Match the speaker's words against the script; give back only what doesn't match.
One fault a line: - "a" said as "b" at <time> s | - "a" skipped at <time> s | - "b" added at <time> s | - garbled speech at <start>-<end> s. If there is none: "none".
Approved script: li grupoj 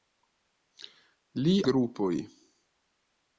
none